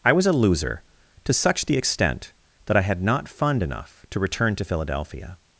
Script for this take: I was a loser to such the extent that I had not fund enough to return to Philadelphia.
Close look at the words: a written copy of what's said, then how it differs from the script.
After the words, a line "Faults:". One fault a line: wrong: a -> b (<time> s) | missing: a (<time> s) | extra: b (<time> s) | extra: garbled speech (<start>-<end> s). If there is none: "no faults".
I was a loser to such the extent that I had not fund enough to return to Philadelphia.
Faults:
no faults